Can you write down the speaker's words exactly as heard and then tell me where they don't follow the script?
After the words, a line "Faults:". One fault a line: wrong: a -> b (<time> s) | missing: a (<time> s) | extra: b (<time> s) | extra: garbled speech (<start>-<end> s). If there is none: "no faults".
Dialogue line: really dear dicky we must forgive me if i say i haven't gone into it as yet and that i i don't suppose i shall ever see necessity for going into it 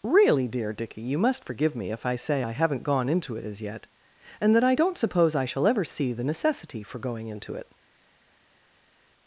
really dear dicky you must forgive me if i say i haven't gone into it as yet and that i don't suppose i shall ever see the necessity for going into it
Faults:
wrong: we -> you (1.0 s)
missing: i (4.7 s)
extra: the (6.1 s)